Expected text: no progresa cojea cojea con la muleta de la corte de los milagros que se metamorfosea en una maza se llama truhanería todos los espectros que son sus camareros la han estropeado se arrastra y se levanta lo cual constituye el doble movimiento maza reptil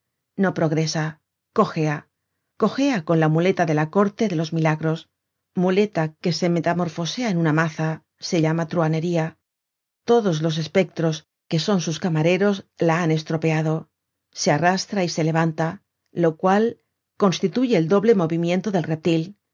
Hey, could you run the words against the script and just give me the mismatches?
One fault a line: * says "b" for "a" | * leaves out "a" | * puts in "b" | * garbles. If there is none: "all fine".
* puts in "muleta"
* says "del" for "maza"